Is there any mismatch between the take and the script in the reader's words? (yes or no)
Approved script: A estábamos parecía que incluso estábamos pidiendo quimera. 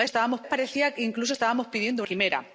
no